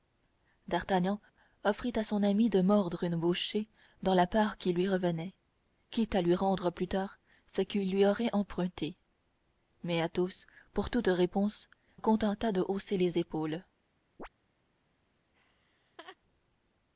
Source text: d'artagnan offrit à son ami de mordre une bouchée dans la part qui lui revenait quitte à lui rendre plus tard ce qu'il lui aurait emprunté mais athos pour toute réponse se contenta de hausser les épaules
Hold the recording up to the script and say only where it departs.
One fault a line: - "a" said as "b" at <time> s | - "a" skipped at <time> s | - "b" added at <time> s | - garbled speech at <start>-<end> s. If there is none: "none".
- "se" skipped at 11.7 s